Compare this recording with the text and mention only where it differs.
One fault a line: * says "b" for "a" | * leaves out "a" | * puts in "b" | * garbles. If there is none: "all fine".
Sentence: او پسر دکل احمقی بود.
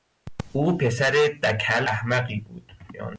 all fine